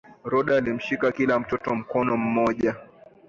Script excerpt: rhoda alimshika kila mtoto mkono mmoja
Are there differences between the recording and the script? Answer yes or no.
no